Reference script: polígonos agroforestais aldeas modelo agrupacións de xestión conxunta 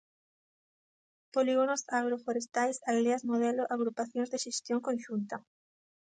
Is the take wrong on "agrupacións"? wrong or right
right